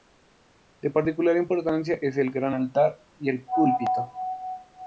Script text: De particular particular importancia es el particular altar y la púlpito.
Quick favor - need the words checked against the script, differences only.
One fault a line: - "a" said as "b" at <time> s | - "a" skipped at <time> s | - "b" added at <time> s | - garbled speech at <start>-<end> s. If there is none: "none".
- "particular" skipped at 1.4 s
- "particular" said as "gran" at 2.3 s
- "la" said as "el" at 3.3 s